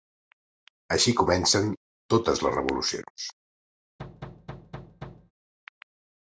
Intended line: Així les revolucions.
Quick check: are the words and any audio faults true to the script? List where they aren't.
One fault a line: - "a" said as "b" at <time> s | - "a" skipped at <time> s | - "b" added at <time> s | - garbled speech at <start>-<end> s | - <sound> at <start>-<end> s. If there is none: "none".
- "comencen totes" added at 1.2 s
- thud at 4.0-5.3 s